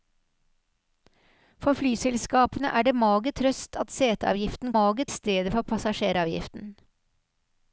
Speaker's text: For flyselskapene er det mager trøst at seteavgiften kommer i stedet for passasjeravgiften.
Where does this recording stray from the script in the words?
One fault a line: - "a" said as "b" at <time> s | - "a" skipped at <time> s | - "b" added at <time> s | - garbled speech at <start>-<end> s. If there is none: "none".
- "kommer" said as "mager" at 4.7 s